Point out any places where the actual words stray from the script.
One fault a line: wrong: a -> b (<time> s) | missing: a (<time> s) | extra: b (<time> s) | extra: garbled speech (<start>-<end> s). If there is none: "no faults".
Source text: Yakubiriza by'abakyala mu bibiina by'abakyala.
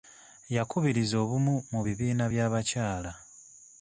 wrong: by'abakyala -> obumu (1.2 s)